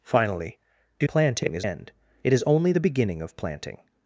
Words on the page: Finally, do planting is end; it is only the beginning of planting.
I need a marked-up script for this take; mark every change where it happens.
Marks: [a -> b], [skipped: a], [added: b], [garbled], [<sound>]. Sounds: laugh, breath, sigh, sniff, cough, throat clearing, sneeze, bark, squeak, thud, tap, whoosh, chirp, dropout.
Finally, do planting is end; it is only the beginning of planting.